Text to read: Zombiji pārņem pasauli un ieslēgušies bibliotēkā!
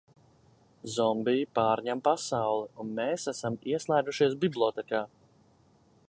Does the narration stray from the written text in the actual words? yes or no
yes